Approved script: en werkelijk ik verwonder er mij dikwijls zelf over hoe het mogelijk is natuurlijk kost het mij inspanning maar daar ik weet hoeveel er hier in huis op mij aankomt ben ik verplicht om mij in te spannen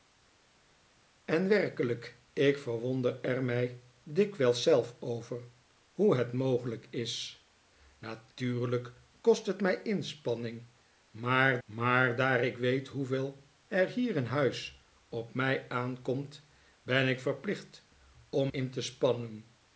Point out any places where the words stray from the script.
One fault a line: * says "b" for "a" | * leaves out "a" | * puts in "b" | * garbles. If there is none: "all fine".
* puts in "maar"
* leaves out "mij"